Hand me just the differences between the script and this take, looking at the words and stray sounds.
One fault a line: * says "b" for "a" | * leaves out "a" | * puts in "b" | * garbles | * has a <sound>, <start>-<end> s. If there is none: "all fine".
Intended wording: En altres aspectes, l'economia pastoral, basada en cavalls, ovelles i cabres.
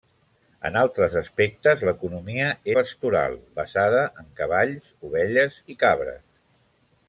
all fine